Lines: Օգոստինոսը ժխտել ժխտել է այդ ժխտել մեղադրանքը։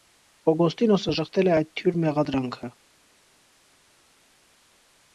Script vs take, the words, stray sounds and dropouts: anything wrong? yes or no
yes